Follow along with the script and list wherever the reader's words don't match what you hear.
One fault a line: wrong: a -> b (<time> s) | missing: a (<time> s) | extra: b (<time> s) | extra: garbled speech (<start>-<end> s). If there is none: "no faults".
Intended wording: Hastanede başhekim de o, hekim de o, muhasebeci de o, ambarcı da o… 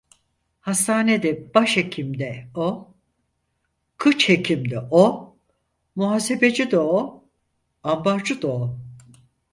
extra: kıç (4.0 s)